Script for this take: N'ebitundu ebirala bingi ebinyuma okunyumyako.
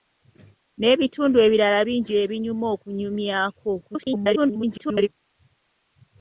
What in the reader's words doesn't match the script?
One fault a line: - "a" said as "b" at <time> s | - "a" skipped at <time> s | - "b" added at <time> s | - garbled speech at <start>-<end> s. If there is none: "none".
- garbled speech at 3.8-5.1 s